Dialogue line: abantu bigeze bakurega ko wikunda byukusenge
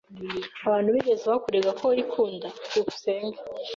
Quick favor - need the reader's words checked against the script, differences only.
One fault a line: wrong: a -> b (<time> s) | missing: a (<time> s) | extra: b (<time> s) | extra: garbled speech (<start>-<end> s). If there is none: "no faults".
no faults